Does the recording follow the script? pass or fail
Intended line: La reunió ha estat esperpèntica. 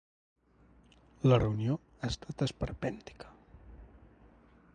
pass